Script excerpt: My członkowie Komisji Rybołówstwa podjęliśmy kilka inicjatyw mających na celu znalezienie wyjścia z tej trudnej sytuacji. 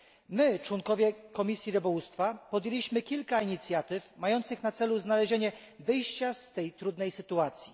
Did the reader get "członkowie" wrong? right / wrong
right